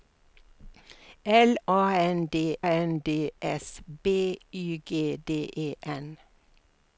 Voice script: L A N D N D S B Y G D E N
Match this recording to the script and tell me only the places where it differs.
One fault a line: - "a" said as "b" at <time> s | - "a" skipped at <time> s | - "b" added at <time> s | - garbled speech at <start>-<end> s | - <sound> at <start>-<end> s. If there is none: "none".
none